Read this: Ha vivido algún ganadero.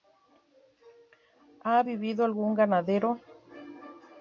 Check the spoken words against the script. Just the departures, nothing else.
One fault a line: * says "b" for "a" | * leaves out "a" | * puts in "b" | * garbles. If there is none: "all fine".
all fine